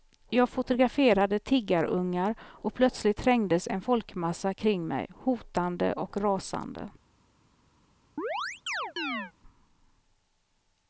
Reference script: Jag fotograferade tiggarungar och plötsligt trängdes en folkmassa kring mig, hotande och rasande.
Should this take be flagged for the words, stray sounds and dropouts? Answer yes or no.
yes